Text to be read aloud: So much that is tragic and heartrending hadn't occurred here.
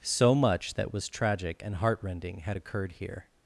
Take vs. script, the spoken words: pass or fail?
fail